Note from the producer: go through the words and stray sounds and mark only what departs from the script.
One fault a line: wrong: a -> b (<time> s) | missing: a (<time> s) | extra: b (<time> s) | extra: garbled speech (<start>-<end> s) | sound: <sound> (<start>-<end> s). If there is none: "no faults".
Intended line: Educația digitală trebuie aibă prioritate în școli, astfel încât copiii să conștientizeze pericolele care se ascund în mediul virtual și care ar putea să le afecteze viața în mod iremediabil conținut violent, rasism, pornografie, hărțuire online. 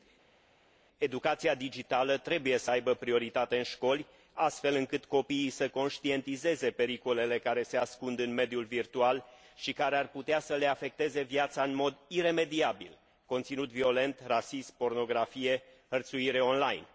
extra: să (2.6 s)